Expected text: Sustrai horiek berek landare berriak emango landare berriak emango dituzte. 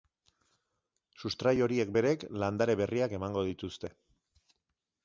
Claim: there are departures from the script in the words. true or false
true